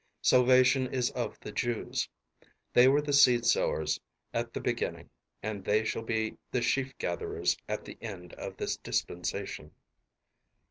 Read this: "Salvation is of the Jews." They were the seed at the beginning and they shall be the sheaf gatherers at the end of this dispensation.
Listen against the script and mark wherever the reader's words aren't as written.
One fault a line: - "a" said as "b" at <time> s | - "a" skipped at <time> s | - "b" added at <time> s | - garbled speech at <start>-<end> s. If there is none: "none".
- "sowers" added at 3.5 s